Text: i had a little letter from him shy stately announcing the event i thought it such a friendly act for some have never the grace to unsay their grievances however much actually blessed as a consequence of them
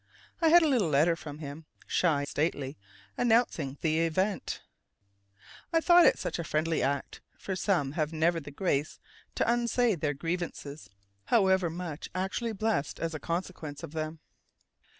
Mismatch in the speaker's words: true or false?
false